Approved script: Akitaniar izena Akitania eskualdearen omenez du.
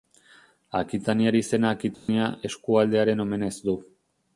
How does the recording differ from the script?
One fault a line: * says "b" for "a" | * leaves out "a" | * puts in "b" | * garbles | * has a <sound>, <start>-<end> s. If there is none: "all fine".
* has a dropout, 1.9-2.1 s